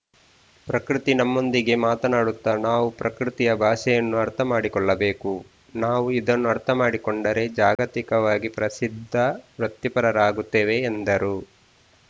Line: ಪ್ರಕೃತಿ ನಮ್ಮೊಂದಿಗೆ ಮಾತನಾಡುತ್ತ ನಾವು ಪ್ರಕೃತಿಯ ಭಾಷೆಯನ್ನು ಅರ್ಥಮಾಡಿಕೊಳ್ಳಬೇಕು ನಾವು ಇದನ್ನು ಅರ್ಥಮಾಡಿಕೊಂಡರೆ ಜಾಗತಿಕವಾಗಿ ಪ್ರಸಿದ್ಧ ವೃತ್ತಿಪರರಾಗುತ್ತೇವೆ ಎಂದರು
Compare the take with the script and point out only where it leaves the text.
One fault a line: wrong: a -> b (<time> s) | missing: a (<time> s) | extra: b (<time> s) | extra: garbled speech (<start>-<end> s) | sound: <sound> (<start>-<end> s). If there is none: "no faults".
sound: dropout (7.8-7.8 s)